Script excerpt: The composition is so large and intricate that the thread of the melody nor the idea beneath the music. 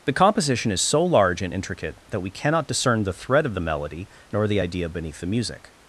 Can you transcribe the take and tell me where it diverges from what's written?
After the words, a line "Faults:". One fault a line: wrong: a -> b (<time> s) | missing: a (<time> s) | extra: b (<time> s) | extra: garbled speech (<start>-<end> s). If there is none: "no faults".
The composition is so large and intricate that we cannot discern the thread of the melody nor the idea beneath the music.
Faults:
extra: we cannot discern (2.2 s)